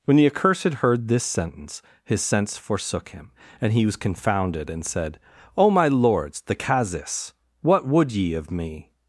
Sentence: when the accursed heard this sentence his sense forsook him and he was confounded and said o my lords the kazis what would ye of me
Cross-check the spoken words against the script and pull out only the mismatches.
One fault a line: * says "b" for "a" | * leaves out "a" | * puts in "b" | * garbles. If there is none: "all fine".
all fine